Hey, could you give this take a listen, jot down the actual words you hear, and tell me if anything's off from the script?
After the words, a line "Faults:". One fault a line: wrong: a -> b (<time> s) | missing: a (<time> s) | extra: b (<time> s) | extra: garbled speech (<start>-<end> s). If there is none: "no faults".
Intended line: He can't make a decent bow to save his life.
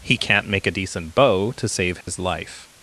He can't make a decent bow to save his life.
Faults:
no faults